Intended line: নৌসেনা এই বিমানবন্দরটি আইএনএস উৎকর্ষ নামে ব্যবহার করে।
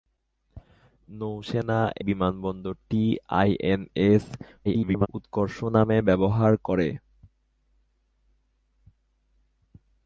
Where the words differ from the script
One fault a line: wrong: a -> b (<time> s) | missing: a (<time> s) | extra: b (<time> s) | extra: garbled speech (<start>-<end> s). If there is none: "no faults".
missing: এই (1.8 s)
extra: garbled speech (4.6-5.1 s)